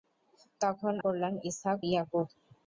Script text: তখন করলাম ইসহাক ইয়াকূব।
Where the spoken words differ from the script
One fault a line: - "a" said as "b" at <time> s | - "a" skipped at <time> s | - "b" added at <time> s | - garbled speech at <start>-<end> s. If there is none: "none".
none